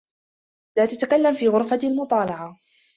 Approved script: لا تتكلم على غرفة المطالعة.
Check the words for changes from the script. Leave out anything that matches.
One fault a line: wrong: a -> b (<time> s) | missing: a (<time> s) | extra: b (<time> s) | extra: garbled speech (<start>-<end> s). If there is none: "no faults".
wrong: على -> في (1.3 s)